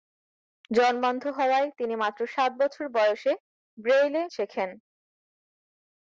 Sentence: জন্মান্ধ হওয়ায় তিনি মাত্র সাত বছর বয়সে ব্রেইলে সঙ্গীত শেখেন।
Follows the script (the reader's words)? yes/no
no